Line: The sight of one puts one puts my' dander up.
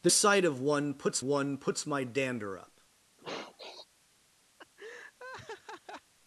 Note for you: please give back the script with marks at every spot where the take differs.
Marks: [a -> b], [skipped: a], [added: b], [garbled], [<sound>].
The sight of one puts one puts my' dander up. [sniff] [laugh]